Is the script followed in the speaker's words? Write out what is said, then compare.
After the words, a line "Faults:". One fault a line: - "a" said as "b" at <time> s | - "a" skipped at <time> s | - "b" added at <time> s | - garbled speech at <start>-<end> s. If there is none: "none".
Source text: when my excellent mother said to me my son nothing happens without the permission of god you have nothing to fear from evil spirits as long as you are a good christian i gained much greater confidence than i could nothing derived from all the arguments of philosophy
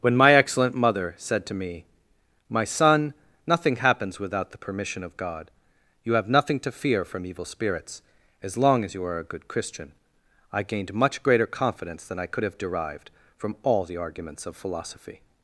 when my excellent mother said to me my son nothing happens without the permission of god you have nothing to fear from evil spirits as long as you are a good christian i gained much greater confidence than i could have derived from all the arguments of philosophy
Faults:
- "nothing" said as "have" at 12.4 s